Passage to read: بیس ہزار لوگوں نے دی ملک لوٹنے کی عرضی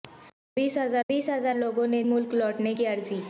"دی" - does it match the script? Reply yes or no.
no